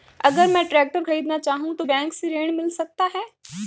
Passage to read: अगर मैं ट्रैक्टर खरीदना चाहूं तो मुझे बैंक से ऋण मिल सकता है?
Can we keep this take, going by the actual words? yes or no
no